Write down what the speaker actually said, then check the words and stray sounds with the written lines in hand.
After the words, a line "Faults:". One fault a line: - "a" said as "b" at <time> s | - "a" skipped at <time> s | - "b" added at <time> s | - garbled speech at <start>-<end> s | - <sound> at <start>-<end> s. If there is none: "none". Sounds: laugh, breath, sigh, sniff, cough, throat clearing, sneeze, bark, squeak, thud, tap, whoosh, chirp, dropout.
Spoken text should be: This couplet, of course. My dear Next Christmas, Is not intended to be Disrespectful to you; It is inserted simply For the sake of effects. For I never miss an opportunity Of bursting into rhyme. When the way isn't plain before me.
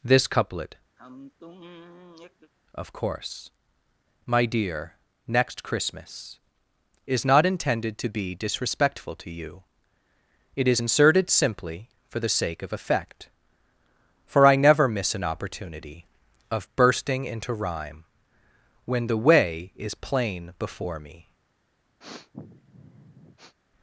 This couplet, of course. My dear Next Christmas, Is not intended to be Disrespectful to you; It is inserted simply For the sake of effect. For I never miss an opportunity Of bursting into rhyme. When the way is plain before me.
Faults:
- sigh at 1.0-2.5 s
- "effects" said as "effect" at 12.7 s
- "isn't" said as "is" at 19.8 s
- sniff at 22.0-23.6 s